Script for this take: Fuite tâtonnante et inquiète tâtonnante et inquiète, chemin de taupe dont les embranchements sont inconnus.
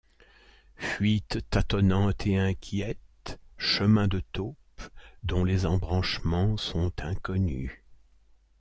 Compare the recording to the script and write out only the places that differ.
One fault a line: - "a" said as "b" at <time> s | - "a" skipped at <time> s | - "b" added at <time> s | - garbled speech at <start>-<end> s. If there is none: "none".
- "tâtonnante et inquiète" skipped at 3.4 s